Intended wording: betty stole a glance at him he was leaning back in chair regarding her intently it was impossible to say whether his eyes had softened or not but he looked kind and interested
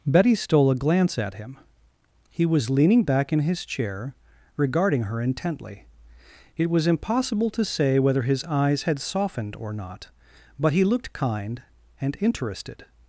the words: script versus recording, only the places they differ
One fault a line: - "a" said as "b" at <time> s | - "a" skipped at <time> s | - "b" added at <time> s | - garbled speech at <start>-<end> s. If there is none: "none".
- "his" added at 3.4 s